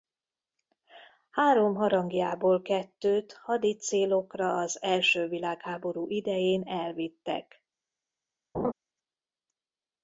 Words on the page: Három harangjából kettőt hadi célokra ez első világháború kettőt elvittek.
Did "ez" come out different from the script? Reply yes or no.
yes